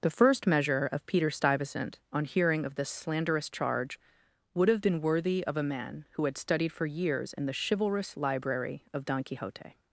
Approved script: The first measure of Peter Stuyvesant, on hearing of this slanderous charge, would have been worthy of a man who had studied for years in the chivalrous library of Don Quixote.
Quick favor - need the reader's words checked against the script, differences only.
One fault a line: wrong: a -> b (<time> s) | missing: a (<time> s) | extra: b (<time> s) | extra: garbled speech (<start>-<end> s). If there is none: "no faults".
no faults